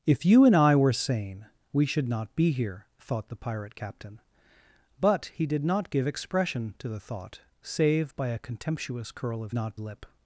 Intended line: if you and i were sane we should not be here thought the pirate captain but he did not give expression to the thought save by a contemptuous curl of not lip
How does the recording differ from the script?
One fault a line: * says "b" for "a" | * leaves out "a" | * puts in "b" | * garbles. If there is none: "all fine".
all fine